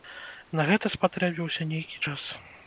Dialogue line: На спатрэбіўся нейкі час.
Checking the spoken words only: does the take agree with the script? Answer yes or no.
no